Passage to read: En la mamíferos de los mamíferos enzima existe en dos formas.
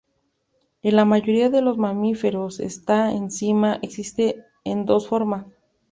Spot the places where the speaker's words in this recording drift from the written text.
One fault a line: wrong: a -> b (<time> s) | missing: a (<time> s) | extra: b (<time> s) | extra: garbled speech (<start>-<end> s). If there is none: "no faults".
wrong: mamíferos -> mayoría (1.1 s)
extra: esta (2.6 s)